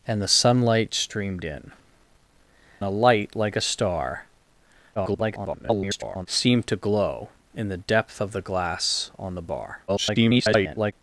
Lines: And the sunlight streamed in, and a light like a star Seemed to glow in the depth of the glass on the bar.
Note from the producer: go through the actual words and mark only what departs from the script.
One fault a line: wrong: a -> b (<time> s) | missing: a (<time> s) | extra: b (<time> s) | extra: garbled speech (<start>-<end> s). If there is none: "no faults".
missing: and (1.7 s)
extra: garbled speech (5.0-6.3 s)
extra: garbled speech (9.9-10.9 s)